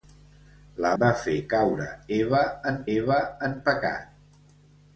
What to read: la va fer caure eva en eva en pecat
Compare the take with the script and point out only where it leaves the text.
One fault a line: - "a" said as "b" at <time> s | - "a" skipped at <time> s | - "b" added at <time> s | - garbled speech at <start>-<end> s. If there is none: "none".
none